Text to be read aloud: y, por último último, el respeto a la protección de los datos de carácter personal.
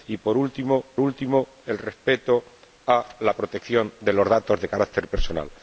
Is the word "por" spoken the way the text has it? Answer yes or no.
yes